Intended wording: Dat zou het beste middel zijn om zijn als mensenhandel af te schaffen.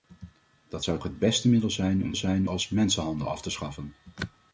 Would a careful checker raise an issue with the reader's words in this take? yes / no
no